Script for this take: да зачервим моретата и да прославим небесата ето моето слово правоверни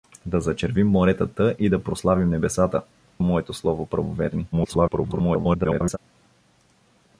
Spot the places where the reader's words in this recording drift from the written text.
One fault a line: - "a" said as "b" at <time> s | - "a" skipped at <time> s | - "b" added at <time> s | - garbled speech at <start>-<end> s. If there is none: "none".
- "ето" skipped at 2.8 s
- garbled speech at 4.5-6.0 s